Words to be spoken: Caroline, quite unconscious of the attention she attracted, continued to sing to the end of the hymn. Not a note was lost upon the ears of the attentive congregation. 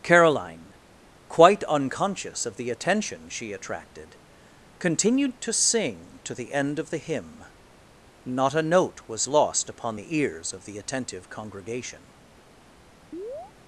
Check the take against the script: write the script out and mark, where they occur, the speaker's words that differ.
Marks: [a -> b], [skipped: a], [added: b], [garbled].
Caroline, quite unconscious of the attention she attracted, continued to sing to the end of the hymn. Not a note was lost upon the ears of the attentive congregation.